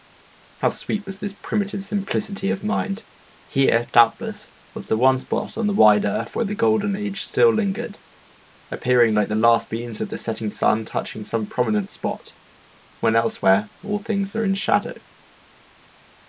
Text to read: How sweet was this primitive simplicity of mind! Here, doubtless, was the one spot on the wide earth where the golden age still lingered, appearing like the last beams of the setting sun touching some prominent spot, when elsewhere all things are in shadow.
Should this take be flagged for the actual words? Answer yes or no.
no